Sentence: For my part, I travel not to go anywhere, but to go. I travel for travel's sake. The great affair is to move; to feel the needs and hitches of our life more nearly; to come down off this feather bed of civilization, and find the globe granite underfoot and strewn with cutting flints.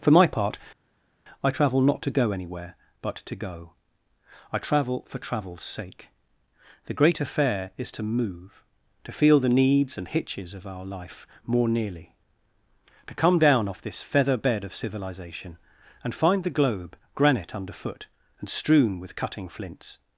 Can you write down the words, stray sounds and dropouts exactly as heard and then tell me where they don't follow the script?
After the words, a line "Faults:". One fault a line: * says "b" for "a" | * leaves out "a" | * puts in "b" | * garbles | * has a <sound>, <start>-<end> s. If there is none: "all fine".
For my part, I travel not to go anywhere, but to go. I travel for travel's sake. The great affair is to move; to feel the needs and hitches of our life more nearly; to come down off this feather bed of civilization, and find the globe granite underfoot and strewn with cutting flints.
Faults:
all fine